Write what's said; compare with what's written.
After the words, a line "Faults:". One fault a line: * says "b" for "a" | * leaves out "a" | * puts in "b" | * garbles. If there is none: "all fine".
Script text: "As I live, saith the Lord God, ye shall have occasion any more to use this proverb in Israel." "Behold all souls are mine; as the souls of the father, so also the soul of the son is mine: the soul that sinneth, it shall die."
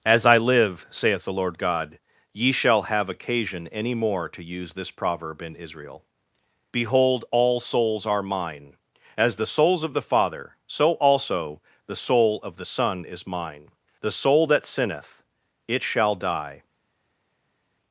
"As I live, saith the Lord God, ye shall have occasion any more to use this proverb in Israel." "Behold all souls are mine; as the souls of the father, so also the soul of the son is mine: the soul that sinneth, it shall die."
Faults:
all fine